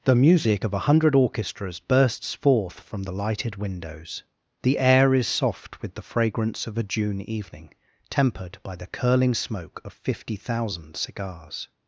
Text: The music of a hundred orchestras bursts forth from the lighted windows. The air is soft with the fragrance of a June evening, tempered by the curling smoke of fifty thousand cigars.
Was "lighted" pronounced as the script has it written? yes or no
yes